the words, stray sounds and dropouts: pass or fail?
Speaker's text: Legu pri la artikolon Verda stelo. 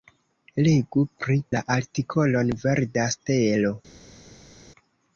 pass